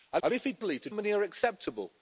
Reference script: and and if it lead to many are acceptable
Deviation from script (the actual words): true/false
false